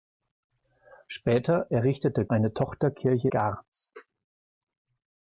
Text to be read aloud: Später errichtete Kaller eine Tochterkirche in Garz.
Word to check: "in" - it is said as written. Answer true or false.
false